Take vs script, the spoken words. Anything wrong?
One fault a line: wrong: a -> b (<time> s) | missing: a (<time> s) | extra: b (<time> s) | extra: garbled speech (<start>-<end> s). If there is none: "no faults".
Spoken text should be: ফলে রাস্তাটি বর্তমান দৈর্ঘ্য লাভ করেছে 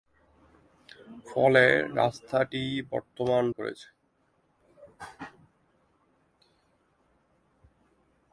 missing: দৈর্ঘ্য লাভ (3.4 s)